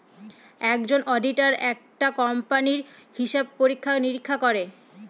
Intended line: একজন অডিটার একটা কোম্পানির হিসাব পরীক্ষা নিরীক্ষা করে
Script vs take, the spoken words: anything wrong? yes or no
no